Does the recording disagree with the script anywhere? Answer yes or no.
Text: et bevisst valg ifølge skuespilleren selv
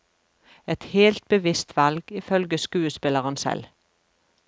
yes